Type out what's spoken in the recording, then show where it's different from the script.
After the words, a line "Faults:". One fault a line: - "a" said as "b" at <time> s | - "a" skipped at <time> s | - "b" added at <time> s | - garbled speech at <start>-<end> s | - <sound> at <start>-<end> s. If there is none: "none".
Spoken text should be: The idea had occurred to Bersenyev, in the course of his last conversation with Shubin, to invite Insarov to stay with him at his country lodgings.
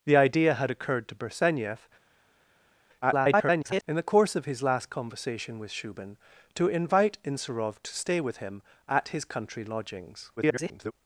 The idea had occurred to Bersenyev, [garbled] in the course of his last conversation with Shubin, to invite Insarov to stay with him at his country lodgings. [garbled]
Faults:
- garbled speech at 3.0-3.8 s
- garbled speech at 10.4-10.9 s